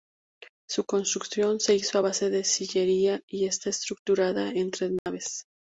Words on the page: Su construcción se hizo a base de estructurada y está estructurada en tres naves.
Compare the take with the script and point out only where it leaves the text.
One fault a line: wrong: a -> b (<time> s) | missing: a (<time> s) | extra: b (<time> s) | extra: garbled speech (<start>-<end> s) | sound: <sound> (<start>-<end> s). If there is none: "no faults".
wrong: estructurada -> sillería (2.4 s)
sound: dropout (5.0-5.1 s)